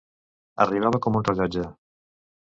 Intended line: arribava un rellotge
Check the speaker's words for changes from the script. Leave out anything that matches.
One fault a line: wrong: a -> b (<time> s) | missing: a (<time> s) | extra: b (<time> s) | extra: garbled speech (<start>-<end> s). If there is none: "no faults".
extra: com (1.1 s)